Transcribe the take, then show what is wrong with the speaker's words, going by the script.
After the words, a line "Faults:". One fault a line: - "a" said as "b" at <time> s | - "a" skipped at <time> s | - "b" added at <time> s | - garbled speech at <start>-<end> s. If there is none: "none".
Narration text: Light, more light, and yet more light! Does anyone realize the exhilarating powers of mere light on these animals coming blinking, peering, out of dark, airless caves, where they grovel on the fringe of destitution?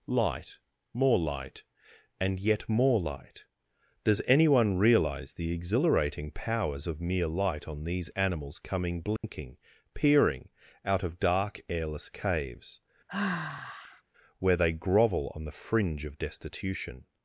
Light, more light, and yet more light! Does anyone realize the exhilarating powers of mere light on these animals coming blinking, peering, out of dark, airless caves, where they grovel on the fringe of destitution?
Faults:
none